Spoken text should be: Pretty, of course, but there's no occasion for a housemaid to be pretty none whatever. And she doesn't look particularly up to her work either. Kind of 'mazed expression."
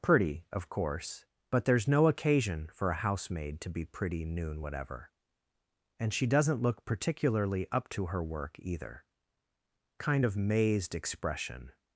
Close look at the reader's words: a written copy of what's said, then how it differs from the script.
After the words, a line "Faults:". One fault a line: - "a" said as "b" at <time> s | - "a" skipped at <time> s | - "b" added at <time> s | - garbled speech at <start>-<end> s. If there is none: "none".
Pretty, of course, but there's no occasion for a housemaid to be pretty noon whatever. And she doesn't look particularly up to her work either. Kind of 'mazed expression."
Faults:
- "none" said as "noon" at 4.2 s